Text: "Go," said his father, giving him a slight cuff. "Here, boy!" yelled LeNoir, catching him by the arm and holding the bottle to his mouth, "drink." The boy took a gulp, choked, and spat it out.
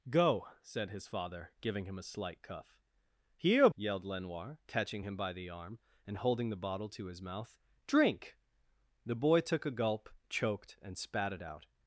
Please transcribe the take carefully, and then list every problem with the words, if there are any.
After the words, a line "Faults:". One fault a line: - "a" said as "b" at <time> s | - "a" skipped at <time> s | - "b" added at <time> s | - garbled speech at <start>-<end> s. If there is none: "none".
"Go," said his father, giving him a slight cuff. "Here!" yelled LeNoir, catching him by the arm and holding the bottle to his mouth, "drink." The boy took a gulp, choked, and spat it out.
Faults:
- "boy" skipped at 3.7 s